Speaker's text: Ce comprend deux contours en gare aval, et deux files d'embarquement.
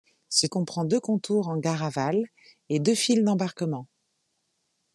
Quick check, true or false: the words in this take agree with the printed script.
true